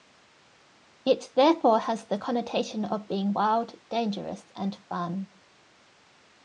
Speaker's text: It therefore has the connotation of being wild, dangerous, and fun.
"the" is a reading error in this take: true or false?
false